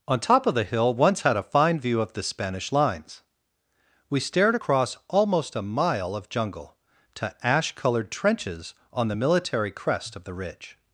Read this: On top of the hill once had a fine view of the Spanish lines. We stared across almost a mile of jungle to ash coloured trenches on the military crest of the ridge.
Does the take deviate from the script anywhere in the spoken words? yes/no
no